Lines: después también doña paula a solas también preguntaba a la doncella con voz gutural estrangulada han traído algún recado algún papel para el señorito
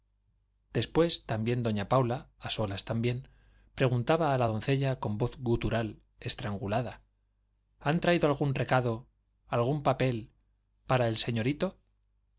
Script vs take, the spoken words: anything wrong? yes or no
no